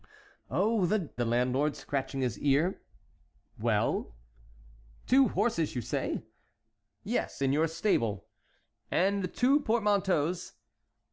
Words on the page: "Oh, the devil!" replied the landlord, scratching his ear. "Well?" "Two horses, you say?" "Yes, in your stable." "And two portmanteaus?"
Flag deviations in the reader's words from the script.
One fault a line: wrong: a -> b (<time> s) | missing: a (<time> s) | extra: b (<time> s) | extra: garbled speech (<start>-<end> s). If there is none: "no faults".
missing: devil replied (1.1 s)